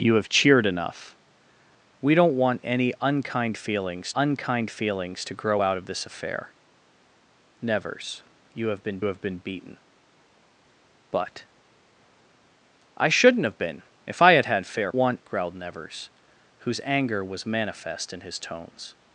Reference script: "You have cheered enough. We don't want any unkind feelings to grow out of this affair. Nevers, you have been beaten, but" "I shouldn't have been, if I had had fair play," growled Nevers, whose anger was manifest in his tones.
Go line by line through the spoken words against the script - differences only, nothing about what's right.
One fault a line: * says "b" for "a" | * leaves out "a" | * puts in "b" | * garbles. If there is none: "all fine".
* puts in "unkind feelings"
* puts in "have been"
* says "want" for "play"